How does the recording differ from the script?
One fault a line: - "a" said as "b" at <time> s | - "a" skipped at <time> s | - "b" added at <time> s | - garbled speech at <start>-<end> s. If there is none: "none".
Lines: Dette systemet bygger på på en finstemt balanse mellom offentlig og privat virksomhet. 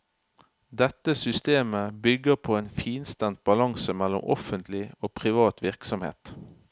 - "på" skipped at 2.6 s